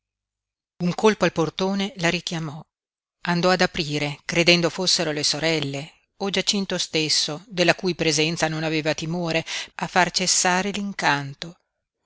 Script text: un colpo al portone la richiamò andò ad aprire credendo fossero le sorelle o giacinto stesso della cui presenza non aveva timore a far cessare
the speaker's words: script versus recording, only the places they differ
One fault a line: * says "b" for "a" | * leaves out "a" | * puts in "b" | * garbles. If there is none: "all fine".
all fine